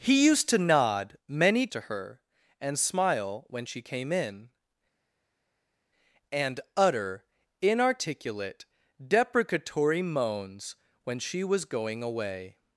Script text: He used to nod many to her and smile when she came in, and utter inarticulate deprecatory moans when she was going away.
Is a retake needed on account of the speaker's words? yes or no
no